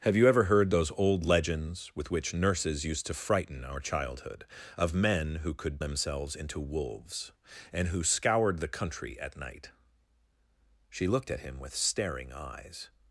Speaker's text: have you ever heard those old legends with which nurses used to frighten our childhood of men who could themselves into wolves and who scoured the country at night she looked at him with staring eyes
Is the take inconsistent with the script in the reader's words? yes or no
no